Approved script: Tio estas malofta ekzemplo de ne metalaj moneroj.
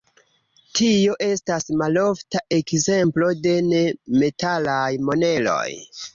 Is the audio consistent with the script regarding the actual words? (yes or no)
yes